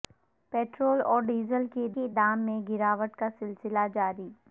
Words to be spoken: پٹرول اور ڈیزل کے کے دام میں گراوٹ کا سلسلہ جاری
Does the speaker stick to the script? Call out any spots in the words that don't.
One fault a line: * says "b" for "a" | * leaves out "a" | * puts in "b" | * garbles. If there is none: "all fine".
all fine